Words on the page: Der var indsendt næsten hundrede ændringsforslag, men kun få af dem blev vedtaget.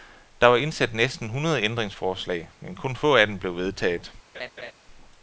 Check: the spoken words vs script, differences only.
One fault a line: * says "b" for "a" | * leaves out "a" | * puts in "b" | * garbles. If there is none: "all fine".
all fine